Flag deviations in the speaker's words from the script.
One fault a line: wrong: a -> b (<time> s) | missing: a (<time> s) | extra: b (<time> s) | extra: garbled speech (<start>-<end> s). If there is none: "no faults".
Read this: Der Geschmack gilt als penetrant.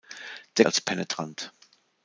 missing: Geschmack gilt (0.7 s)